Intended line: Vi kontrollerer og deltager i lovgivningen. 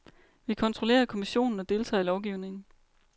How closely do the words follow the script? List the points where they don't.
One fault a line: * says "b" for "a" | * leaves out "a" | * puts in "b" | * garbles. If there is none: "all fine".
* puts in "kommissionen"